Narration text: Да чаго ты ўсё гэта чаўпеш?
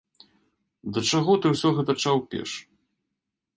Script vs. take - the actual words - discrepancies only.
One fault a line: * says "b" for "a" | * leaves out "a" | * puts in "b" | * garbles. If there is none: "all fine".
all fine